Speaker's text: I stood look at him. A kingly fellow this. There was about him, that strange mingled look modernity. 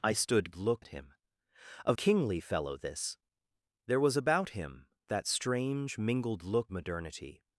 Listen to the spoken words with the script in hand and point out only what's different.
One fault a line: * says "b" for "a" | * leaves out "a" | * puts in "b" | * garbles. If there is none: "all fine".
all fine